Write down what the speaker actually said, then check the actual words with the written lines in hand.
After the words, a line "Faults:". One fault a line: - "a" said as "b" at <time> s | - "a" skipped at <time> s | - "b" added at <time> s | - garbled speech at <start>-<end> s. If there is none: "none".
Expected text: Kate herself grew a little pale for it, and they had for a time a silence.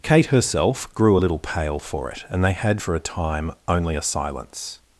Kate herself grew a little pale for it, and they had for a time only a silence.
Faults:
- "only" added at 3.7 s